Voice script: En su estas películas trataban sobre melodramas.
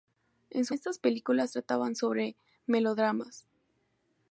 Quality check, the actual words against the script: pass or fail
pass